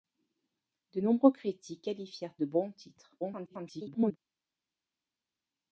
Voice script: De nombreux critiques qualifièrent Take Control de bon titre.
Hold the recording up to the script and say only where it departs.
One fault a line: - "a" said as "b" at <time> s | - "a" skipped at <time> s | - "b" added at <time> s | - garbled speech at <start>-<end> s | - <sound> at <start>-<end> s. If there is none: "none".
- "Take Control" skipped at 2.3 s
- garbled speech at 3.2-4.2 s